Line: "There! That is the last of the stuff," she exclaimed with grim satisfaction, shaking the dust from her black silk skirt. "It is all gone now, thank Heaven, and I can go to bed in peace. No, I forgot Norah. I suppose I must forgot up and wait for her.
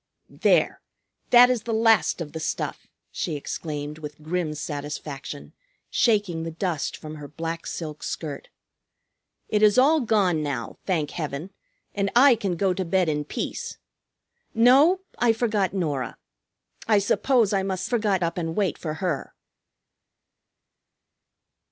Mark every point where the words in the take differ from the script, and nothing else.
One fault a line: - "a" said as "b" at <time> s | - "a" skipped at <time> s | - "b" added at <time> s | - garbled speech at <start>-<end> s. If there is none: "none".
none